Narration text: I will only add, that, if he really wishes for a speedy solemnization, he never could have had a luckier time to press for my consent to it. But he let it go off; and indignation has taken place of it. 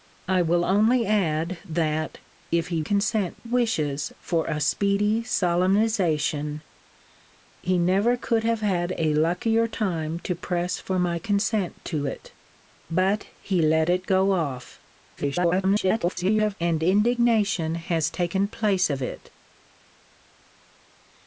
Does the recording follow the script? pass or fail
fail